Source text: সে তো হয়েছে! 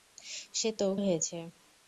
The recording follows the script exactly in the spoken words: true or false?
true